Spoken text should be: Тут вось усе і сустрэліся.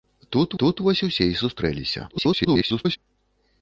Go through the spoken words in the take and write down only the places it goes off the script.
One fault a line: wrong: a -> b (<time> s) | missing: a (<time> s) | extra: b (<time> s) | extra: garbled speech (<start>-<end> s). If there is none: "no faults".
extra: тут (0.6 s)
extra: garbled speech (2.1-3.0 s)